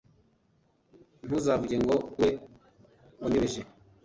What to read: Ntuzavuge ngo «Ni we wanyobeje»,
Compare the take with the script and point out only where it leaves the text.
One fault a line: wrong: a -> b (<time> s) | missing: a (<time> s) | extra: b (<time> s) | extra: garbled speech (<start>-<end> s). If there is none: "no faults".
missing: Ni (1.9 s)